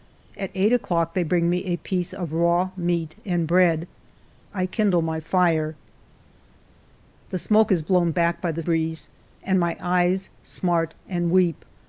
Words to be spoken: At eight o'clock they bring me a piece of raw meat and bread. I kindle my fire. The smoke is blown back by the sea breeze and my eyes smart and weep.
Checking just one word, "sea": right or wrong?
wrong